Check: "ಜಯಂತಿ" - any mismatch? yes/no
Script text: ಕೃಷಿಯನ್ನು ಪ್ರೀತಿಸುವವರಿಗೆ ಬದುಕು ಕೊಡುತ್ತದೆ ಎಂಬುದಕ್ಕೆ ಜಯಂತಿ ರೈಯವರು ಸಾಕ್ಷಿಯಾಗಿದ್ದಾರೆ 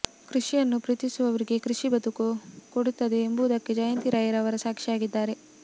no